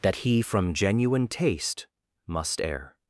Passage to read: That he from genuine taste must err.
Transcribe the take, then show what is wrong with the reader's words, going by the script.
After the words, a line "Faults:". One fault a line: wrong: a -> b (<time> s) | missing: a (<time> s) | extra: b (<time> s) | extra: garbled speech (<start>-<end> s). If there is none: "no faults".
That he from genuine taste must err.
Faults:
no faults